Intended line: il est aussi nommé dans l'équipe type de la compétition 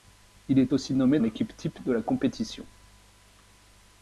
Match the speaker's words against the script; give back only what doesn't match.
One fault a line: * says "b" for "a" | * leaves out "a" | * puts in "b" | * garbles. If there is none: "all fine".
* leaves out "dans"